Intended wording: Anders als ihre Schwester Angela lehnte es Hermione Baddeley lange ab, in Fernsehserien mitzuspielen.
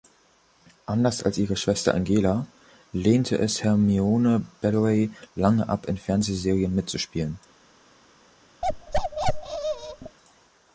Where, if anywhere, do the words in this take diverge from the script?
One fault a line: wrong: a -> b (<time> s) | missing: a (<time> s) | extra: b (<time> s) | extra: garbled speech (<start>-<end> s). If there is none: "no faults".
no faults